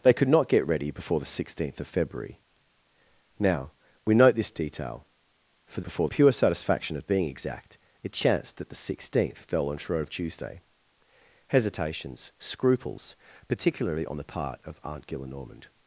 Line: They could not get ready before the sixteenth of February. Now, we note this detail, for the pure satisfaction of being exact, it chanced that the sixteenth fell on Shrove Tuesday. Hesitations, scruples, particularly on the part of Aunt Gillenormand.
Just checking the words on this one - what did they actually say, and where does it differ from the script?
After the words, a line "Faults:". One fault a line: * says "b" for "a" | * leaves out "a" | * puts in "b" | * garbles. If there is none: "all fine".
They could not get ready before the sixteenth of February. Now, we note this detail, for before pure satisfaction of being exact, it chanced that the sixteenth fell on Shrove Tuesday. Hesitations, scruples, particularly on the part of Aunt Gillenormand.
Faults:
* says "before" for "the"